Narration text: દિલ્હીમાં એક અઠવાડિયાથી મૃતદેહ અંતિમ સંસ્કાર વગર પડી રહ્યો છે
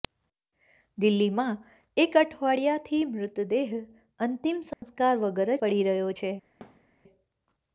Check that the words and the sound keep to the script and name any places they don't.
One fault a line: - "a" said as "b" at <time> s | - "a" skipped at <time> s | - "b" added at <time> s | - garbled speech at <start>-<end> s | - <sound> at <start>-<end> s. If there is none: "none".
- dropout at 4.7-4.8 s
- thud at 6.6-6.9 s